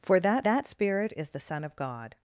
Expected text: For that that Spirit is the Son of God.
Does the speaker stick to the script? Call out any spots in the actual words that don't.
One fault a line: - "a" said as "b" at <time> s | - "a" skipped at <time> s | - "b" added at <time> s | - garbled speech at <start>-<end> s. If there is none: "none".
none